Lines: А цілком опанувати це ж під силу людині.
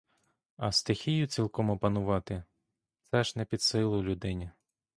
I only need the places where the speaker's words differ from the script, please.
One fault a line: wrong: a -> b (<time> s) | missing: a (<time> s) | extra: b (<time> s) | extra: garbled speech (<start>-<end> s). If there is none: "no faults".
extra: стихію (0.7 s)
extra: не (3.4 s)